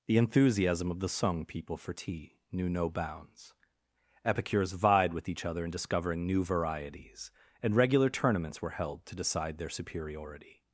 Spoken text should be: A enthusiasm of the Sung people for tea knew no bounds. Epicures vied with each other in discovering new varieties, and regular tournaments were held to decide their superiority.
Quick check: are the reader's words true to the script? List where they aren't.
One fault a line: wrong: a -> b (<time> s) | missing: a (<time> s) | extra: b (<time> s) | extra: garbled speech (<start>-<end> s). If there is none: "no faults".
wrong: A -> The (0.1 s)